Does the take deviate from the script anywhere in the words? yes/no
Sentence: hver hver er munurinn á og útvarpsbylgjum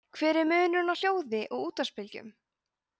yes